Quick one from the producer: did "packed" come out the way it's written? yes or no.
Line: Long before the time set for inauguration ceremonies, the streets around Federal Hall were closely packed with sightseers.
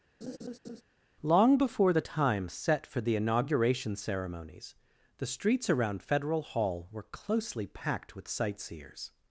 yes